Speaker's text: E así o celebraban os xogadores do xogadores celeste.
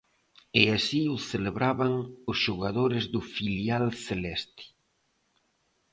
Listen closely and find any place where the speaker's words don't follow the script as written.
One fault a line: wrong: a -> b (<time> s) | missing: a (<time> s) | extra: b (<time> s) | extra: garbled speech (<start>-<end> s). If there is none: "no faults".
wrong: xogadores -> filial (3.3 s)